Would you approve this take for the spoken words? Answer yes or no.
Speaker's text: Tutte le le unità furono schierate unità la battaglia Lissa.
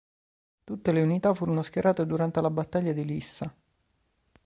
no